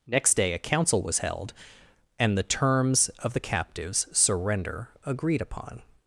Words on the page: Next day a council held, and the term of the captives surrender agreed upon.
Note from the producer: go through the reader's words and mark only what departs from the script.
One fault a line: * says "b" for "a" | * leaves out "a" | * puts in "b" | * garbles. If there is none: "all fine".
* puts in "was"
* says "terms" for "term"